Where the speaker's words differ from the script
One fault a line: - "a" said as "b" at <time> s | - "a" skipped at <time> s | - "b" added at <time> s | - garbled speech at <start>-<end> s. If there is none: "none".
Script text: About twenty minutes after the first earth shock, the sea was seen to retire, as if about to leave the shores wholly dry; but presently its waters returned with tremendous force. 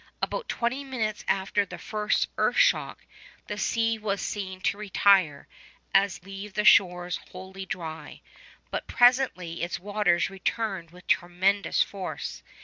- "if about to" skipped at 6.2 s